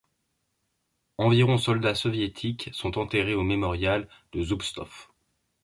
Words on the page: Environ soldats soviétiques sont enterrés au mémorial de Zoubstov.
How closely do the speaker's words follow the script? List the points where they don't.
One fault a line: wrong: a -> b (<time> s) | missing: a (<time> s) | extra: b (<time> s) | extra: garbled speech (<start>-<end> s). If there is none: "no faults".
no faults